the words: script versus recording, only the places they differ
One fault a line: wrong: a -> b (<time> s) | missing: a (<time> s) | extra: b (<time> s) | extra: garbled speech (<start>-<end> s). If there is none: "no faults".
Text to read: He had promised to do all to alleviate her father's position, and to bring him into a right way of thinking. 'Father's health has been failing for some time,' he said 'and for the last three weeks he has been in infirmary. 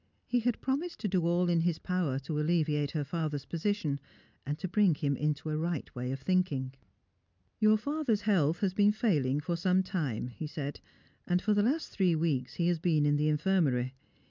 extra: in his power (1.5 s)
extra: Your (7.6 s)
extra: the (13.2 s)